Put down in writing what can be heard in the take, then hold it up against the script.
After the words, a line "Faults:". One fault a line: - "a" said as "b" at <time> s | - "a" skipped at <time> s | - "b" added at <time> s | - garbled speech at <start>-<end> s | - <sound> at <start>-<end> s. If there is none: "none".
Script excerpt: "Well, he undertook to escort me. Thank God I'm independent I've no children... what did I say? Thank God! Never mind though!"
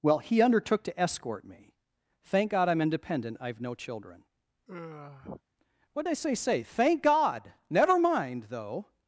"Well, he undertook to escort me. Thank God I'm independent I've no children... what did I say say? Thank God! Never mind though!"
Faults:
- sigh at 4.7-5.4 s
- "say" added at 6.3 s